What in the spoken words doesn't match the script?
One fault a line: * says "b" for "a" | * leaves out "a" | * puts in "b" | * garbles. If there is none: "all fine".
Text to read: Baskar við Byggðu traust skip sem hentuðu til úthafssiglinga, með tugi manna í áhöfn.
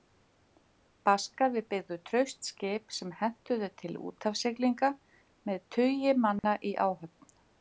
all fine